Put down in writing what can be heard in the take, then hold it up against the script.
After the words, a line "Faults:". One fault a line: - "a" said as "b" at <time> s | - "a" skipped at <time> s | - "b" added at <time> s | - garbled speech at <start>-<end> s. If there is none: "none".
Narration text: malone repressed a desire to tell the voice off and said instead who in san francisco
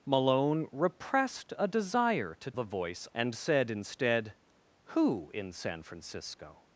malone repressed a desire to the voice and said instead who in san francisco
Faults:
- "tell" skipped at 2.5 s
- "off" skipped at 3.1 s